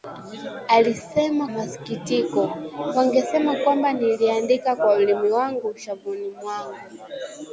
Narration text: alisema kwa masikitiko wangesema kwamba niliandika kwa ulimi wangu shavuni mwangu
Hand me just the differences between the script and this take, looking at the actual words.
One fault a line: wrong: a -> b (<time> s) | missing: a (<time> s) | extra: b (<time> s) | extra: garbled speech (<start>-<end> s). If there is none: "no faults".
missing: kwa (1.5 s)